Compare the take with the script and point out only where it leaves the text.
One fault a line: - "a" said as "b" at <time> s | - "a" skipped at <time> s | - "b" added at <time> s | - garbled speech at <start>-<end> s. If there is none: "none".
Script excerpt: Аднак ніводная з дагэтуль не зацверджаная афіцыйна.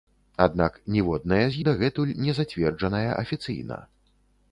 none